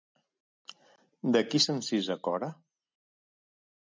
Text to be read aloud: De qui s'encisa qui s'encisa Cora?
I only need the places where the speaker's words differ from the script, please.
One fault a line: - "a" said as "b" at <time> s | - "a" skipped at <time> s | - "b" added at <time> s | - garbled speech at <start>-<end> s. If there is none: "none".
- "qui s'encisa" skipped at 2.2 s